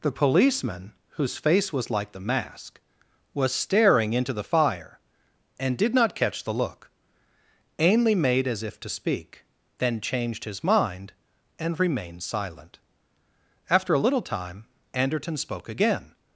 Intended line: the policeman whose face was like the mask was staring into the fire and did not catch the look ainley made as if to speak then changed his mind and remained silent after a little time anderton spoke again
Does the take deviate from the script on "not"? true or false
false